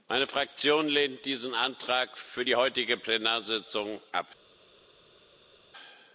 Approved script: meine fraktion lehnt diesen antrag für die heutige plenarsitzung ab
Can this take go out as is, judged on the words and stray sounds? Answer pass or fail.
pass